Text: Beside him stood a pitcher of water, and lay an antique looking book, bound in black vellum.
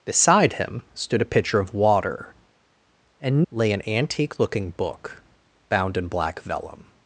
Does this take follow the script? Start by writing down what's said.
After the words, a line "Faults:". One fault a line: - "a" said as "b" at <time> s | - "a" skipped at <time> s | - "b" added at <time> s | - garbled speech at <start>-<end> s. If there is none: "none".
Beside him stood a pitcher of water, and lay an antique looking book, bound in black vellum.
Faults:
none